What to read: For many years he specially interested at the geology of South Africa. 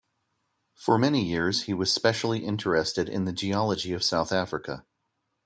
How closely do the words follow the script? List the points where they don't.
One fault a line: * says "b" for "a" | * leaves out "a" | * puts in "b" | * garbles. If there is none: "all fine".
* puts in "was"
* says "in" for "at"